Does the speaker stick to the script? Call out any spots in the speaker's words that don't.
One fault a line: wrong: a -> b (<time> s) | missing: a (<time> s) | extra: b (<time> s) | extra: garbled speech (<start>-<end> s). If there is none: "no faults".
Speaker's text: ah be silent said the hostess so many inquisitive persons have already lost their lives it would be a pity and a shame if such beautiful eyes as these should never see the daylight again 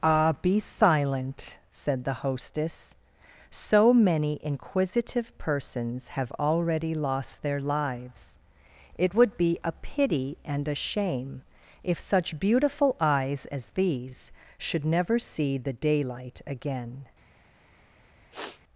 no faults